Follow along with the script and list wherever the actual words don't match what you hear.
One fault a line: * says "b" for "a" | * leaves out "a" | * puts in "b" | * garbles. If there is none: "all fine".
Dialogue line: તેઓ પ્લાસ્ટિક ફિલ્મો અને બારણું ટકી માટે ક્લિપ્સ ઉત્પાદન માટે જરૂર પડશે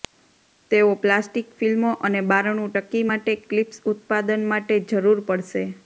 all fine